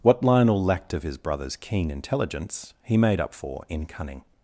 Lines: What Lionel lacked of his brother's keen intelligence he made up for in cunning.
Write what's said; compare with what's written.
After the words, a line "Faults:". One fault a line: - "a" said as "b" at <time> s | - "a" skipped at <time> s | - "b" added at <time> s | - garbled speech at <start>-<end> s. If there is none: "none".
What Lionel lacked of his brother's keen intelligence he made up for in cunning.
Faults:
none